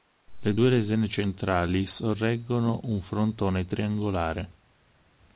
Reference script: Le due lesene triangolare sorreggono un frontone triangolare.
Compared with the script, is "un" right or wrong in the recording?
right